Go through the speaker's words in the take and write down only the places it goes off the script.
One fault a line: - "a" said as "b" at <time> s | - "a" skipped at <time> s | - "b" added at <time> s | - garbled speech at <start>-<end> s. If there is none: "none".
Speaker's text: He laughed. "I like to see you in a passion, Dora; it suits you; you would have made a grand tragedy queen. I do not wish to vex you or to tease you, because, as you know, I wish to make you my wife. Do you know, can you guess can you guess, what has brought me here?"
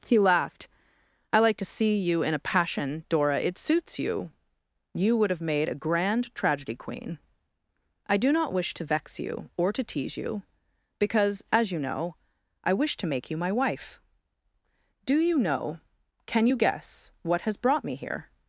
- "can you guess" skipped at 17.1 s